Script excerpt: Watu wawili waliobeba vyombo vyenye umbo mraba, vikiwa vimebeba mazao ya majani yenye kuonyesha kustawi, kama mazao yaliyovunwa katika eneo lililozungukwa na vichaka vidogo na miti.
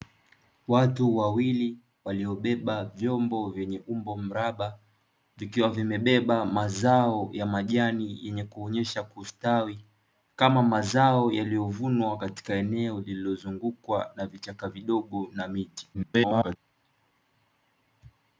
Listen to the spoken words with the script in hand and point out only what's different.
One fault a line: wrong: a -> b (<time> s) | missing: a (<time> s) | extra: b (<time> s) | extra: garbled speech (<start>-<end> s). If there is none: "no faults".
extra: garbled speech (15.9-16.6 s)